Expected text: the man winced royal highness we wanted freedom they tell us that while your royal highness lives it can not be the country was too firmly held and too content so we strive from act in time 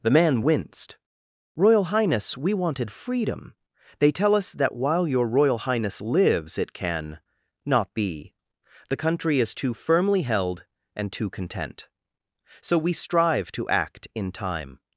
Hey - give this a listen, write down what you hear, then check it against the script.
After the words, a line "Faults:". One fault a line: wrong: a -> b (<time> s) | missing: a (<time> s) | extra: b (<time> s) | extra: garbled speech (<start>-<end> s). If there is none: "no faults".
the man winced royal highness we wanted freedom they tell us that while your royal highness lives it can not be the country is too firmly held and too content so we strive to act in time
Faults:
wrong: was -> is (9.4 s)
wrong: from -> to (13.5 s)